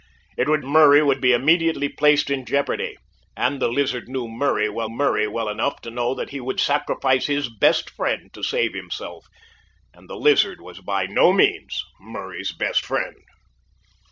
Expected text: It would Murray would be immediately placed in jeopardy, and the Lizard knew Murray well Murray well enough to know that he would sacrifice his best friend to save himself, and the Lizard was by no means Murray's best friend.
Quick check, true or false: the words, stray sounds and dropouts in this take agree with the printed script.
true